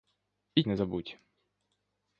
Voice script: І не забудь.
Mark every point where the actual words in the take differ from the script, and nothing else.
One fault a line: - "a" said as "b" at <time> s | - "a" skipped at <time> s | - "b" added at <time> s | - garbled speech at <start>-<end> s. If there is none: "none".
none